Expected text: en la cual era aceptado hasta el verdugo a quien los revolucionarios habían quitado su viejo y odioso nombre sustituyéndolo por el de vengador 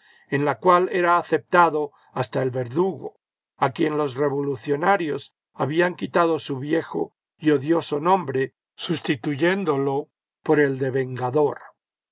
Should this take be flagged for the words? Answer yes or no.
no